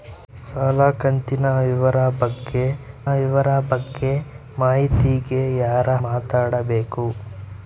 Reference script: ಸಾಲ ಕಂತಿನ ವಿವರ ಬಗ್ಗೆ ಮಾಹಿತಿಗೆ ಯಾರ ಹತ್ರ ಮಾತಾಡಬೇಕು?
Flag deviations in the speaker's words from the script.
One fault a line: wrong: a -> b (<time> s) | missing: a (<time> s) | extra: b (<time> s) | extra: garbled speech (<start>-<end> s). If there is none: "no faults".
extra: ವಿವರ ಬಗ್ಗೆ (3.1 s)
missing: ಹತ್ರ (5.9 s)